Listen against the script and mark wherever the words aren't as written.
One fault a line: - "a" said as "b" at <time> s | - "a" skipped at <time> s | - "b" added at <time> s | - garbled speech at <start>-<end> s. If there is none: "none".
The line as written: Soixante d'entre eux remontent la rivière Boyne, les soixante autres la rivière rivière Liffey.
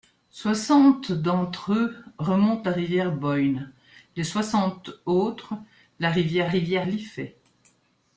none